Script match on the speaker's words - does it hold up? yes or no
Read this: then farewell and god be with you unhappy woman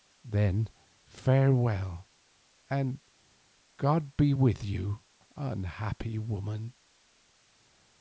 yes